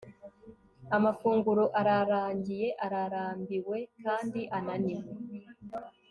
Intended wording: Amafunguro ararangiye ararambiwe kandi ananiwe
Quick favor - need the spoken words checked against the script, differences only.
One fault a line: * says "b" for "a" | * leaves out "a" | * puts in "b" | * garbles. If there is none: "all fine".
all fine